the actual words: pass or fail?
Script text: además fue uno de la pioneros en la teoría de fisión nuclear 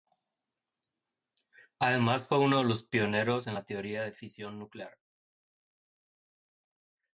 fail